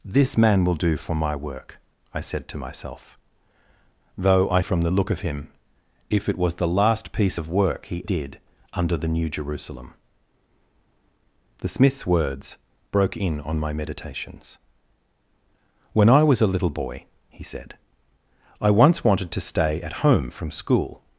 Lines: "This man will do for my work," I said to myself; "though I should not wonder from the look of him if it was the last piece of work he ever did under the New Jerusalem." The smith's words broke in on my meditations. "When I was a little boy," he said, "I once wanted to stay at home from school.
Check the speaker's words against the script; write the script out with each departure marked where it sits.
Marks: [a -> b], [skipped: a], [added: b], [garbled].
"This man will do for my work," I said to myself; "though I [skipped: should not wonder] from the look of him if it was the last piece of work he [skipped: ever] did under the New Jerusalem." The smith's words broke in on my meditations. "When I was a little boy," he said, "I once wanted to stay at home from school.